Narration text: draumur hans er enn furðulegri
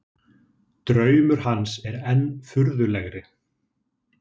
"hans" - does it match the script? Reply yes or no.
yes